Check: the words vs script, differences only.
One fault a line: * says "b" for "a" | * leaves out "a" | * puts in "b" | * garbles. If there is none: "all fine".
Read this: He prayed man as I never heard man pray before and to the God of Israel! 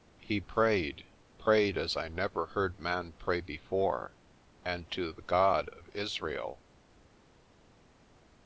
* says "prayed" for "man"